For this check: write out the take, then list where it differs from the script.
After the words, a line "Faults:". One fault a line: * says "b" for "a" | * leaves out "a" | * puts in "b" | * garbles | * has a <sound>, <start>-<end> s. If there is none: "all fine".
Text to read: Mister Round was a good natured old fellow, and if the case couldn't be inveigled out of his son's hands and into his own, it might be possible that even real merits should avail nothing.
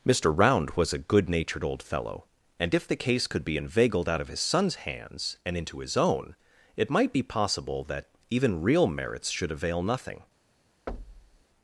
Mister Round was a good natured old fellow, and if the case could be inveigled out of his son's hands and into his own, it might be possible that even real merits should avail nothing.
Faults:
* says "could" for "couldn't"
* has a thud, 10.9-11.4 s